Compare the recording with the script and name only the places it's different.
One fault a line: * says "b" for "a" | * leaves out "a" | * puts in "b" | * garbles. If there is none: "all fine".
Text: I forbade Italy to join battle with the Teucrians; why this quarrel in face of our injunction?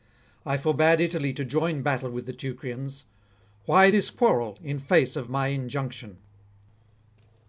* says "my" for "our"